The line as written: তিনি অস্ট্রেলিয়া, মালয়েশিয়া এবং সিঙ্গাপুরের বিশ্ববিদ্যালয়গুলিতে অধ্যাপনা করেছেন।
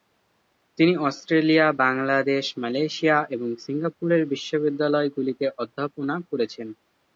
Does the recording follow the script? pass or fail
fail